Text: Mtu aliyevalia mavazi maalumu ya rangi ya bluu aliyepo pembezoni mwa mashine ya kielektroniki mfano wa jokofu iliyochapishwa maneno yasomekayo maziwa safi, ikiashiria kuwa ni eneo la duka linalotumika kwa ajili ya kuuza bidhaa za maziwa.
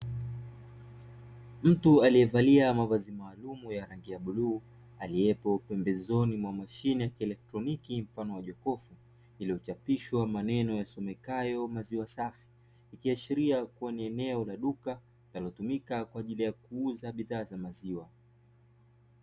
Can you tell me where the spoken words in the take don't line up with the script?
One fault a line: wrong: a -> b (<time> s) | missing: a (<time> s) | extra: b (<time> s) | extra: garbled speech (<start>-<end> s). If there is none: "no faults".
no faults